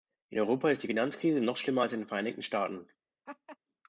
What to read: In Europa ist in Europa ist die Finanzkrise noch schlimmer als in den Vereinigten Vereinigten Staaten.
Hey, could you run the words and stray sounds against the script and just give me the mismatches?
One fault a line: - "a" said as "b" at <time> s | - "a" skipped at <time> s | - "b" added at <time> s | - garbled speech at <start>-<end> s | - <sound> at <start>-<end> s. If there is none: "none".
- "in Europa ist" skipped at 0.8 s
- "Vereinigten" skipped at 2.4 s
- laugh at 3.3-3.6 s